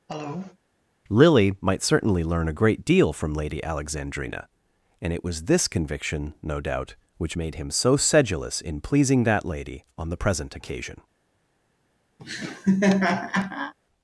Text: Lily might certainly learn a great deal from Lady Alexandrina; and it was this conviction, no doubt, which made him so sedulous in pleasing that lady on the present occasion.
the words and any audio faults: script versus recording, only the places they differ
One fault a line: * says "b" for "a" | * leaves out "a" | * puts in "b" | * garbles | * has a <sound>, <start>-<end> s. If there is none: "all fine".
* has a cough, 0.1-0.6 s
* has a laugh, 12.2-13.7 s